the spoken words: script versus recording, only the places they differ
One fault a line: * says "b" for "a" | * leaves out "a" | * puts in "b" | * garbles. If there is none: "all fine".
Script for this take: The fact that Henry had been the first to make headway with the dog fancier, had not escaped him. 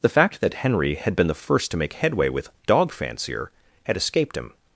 * leaves out "the"
* leaves out "not"